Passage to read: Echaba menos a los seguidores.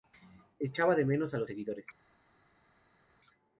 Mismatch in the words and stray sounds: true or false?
true